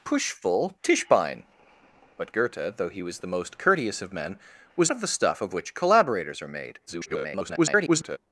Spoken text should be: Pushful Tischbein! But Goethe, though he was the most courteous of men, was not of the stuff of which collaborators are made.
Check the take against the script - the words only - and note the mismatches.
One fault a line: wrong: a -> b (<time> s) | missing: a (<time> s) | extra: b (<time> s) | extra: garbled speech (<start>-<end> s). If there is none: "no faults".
missing: not (4.9 s)
extra: garbled speech (6.9-8.2 s)